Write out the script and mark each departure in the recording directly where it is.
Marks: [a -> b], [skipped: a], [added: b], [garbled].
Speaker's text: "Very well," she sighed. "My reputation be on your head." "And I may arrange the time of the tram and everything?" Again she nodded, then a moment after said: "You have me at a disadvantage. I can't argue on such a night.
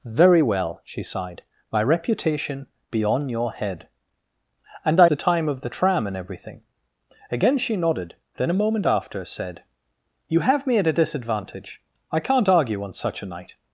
"Very well," she sighed. "My reputation be on your head." "And I [skipped: may arrange] the time of the tram and everything?" Again she nodded, then a moment after said: "You have me at a disadvantage. I can't argue on such a night.